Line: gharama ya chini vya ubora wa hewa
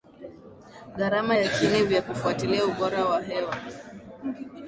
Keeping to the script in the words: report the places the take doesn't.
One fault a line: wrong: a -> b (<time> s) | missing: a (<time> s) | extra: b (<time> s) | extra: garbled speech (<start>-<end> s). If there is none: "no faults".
extra: kufuatilia (2.0 s)